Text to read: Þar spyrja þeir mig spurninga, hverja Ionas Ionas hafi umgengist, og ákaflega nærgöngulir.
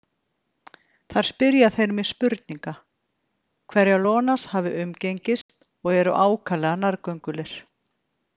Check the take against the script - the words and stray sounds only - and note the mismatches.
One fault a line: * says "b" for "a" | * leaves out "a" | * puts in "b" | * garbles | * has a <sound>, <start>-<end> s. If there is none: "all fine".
* leaves out "Ionas"
* has a dropout, 5.4-5.5 s
* puts in "eru"